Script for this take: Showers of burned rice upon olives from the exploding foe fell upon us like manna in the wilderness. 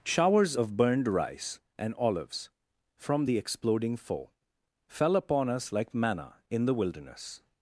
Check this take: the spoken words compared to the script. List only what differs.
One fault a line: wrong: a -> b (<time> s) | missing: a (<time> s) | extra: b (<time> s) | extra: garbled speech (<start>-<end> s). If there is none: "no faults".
wrong: upon -> and (1.8 s)